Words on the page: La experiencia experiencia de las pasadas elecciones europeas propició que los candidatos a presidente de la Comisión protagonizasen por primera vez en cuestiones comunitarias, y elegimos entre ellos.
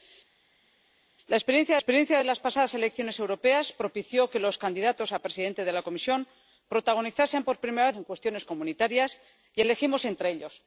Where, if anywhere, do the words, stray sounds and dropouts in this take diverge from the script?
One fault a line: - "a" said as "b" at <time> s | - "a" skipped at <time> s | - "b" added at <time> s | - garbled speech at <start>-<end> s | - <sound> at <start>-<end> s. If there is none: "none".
none